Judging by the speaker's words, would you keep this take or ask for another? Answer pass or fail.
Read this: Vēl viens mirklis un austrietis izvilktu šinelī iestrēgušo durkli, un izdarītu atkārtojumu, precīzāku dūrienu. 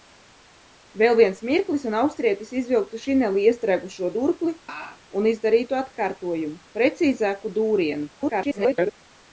fail